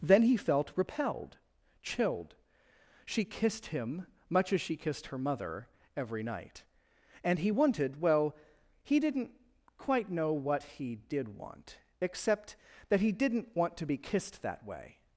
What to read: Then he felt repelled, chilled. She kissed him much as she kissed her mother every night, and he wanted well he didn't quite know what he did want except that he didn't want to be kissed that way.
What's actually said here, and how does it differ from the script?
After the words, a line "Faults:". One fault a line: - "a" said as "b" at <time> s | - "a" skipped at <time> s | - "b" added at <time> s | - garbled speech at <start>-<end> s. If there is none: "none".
Then he felt repelled, chilled. She kissed him much as she kissed her mother every night, and he wanted well he didn't quite know what he did want except that he didn't want to be kissed that way.
Faults:
none